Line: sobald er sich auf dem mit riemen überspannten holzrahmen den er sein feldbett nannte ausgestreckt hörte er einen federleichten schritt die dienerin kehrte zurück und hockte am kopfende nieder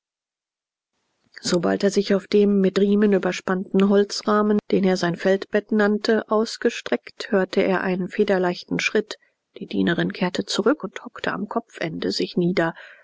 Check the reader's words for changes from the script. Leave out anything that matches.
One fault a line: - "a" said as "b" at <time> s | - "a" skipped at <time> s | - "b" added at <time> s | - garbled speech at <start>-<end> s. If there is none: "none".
- "sich" added at 12.1 s